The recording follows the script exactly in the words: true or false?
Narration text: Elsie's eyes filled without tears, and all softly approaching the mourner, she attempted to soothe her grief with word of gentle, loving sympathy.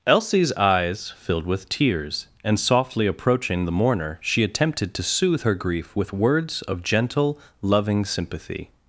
false